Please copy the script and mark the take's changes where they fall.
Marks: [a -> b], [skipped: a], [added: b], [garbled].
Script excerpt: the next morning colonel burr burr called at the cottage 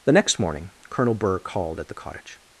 the next morning colonel burr [skipped: burr] called at the cottage